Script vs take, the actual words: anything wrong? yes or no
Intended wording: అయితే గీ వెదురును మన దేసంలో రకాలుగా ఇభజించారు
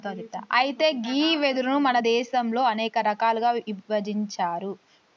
yes